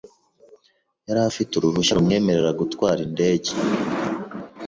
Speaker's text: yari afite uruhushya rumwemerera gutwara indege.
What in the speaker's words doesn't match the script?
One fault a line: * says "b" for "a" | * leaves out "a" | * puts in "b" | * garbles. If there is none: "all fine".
all fine